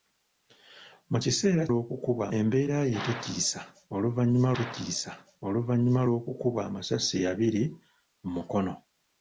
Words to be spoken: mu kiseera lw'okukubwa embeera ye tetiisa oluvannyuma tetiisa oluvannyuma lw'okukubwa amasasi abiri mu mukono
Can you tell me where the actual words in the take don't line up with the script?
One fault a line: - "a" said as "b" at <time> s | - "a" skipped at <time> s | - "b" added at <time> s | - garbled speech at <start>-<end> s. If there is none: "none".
none